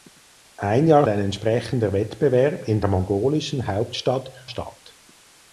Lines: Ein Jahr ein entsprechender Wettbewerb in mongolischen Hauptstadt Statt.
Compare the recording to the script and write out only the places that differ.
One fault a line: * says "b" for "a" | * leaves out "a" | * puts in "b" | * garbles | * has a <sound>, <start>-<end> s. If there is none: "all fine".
all fine